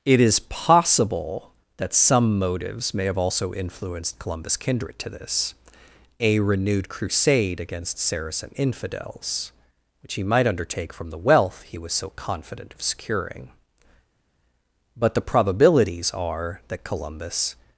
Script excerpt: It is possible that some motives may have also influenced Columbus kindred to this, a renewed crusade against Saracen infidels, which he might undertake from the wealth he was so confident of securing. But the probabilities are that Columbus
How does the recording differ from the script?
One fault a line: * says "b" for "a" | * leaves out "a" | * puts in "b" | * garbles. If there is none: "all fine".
all fine